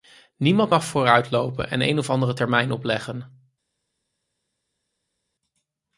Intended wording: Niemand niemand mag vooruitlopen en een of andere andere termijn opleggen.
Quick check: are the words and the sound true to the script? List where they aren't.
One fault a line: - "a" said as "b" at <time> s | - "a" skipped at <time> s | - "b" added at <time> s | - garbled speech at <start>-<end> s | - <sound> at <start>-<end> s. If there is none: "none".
- "niemand" skipped at 0.7 s
- "andere" skipped at 2.3 s